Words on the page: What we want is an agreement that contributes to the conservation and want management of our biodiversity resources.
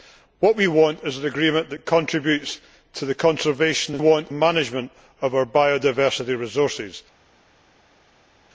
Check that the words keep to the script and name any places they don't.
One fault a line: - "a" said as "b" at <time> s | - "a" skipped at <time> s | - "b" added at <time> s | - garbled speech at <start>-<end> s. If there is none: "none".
none